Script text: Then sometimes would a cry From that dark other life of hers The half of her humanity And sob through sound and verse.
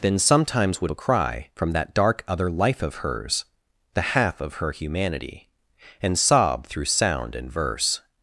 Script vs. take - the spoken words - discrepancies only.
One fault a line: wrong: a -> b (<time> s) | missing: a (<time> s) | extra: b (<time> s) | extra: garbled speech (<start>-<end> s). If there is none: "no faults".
no faults